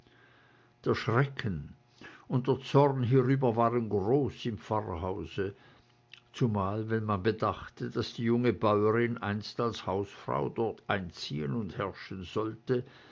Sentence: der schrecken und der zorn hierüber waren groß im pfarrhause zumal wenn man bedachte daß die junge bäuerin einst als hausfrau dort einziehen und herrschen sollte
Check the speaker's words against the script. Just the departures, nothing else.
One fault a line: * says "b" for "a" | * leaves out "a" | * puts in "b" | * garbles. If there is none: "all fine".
all fine